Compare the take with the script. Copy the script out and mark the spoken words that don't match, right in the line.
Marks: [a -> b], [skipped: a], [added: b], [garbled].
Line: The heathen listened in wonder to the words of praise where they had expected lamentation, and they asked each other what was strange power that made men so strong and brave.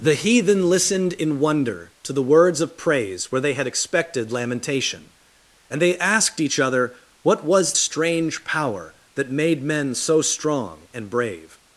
The heathen listened in wonder to the words of praise where they had expected lamentation, and they asked each other what was strange power that made men so strong and brave.